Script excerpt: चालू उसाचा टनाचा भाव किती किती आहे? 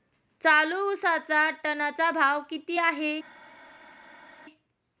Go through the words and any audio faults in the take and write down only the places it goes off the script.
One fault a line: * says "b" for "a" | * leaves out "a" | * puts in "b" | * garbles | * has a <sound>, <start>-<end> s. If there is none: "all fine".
* leaves out "किती"